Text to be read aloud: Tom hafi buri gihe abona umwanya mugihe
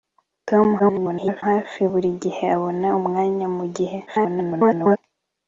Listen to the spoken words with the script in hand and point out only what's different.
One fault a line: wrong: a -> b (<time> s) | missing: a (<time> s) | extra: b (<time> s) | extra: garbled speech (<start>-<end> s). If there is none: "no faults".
extra: garbled speech (0.8-1.4 s)
extra: garbled speech (4.1-5.0 s)